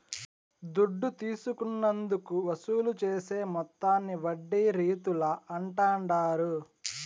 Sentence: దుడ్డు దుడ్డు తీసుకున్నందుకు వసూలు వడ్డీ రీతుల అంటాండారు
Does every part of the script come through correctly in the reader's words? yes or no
no